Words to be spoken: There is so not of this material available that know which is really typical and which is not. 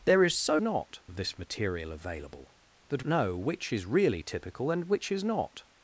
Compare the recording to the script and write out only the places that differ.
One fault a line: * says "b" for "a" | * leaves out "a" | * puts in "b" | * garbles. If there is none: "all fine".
all fine